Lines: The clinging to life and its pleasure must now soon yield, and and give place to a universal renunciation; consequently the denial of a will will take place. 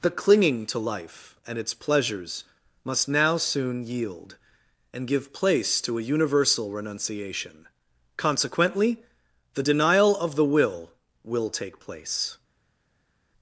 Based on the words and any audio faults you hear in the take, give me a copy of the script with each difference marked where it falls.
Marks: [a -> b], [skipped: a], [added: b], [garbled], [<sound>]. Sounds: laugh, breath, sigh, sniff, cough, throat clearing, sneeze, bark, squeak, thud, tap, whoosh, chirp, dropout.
The clinging to life and its [pleasure -> pleasures] must now soon yield, and [skipped: and] give place to a universal renunciation; consequently the denial of [a -> the] will will take place.